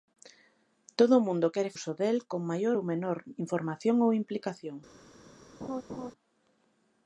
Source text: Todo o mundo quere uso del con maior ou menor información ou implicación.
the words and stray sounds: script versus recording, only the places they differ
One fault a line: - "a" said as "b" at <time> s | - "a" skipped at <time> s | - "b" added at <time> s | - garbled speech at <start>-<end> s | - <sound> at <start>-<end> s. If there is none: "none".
- laugh at 5.6-6.1 s